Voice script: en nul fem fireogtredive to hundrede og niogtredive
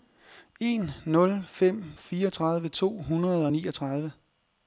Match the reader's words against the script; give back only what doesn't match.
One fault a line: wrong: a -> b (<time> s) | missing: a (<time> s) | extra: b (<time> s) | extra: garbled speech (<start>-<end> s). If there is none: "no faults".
no faults